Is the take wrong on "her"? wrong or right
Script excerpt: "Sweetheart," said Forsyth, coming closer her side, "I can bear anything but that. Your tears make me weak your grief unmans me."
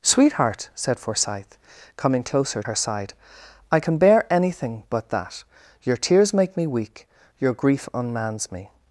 right